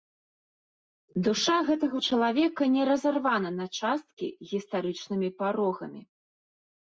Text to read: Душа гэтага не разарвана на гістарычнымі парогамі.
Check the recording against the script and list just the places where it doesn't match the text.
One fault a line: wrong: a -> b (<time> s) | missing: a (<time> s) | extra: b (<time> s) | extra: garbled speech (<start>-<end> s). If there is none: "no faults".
extra: чалавека (2.1 s)
extra: часткі (3.8 s)